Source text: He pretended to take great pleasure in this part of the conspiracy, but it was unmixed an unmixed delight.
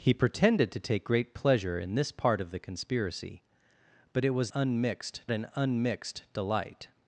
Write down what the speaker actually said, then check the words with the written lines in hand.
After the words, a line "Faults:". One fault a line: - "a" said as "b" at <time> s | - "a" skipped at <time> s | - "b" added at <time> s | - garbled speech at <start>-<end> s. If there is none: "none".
He pretended to take great pleasure in this part of the conspiracy, but it was unmixed an unmixed delight.
Faults:
none